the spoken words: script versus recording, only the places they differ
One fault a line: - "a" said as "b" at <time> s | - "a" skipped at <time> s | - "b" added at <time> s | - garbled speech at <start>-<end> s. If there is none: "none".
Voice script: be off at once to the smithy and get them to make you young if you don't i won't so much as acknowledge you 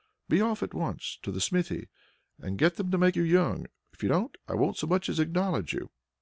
none